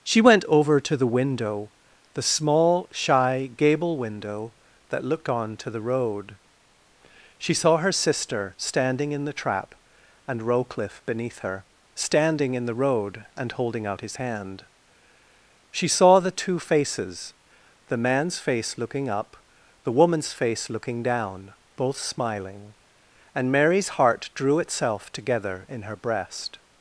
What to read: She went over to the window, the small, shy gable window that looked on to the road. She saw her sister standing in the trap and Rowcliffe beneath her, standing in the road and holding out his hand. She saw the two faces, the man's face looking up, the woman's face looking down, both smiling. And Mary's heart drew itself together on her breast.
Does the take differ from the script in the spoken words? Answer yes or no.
yes